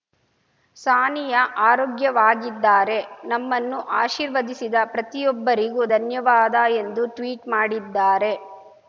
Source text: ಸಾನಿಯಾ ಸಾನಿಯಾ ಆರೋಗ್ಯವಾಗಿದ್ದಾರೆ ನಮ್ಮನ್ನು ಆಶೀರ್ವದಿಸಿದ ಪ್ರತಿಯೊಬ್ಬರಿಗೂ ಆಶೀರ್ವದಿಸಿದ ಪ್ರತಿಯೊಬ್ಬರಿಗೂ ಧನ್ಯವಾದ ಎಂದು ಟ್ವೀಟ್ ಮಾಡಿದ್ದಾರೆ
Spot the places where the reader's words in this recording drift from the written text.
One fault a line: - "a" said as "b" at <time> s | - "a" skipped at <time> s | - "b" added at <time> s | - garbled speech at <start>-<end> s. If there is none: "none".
- "ಸಾನಿಯಾ" skipped at 1.4 s
- "ಆಶೀರ್ವದಿಸಿದ ಪ್ರತಿಯೊಬ್ಬರಿಗೂ" skipped at 5.8 s